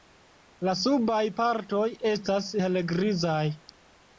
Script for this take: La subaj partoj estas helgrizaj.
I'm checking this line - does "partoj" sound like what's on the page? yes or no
yes